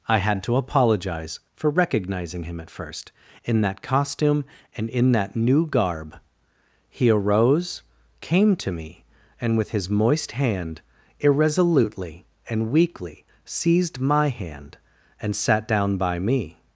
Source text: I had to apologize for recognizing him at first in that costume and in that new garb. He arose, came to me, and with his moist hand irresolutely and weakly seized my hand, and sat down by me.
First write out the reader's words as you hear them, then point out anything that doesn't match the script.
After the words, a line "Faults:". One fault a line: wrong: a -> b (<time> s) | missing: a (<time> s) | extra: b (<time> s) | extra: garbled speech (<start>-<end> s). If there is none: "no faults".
I had to apologize for recognizing him at first in that costume and in that new garb. He arose, came to me, and with his moist hand irresolutely and weakly seized my hand, and sat down by me.
Faults:
no faults